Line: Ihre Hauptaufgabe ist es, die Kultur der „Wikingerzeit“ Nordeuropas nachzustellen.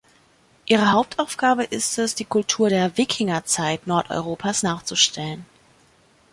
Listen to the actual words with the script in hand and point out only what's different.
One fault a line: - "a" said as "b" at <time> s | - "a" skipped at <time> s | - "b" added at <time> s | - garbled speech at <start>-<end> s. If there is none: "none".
none